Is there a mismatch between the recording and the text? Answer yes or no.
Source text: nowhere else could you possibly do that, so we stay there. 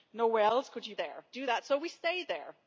yes